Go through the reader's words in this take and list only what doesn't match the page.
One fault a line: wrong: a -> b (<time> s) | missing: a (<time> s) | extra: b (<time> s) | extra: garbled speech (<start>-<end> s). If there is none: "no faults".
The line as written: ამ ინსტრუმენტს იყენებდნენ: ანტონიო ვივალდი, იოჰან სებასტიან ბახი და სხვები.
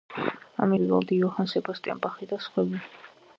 missing: ინსტრუმენტს იყენებდნენ ანტონიო (0.7 s)